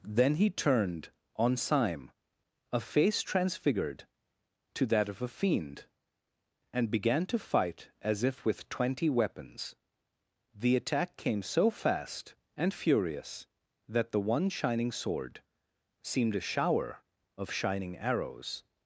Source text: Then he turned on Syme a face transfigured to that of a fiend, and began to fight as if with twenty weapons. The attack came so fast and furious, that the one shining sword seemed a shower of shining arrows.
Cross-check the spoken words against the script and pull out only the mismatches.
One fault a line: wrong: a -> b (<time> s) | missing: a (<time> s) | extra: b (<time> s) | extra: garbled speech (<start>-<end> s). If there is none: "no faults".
no faults